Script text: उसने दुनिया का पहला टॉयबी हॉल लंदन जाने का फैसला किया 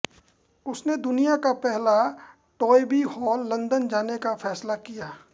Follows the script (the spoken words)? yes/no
yes